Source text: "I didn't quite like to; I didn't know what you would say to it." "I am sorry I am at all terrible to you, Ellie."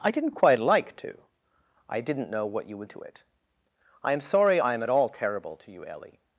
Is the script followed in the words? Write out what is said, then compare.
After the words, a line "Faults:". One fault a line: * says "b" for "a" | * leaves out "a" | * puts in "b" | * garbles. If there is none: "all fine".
"I didn't quite like to; I didn't know what you would to it." "I am sorry I am at all terrible to you, Ellie."
Faults:
* leaves out "say"